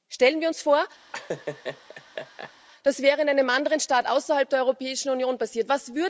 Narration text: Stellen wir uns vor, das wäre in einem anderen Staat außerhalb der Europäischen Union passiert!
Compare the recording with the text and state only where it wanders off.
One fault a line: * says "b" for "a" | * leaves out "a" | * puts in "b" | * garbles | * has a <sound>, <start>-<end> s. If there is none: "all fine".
* has a laugh, 1.1-2.5 s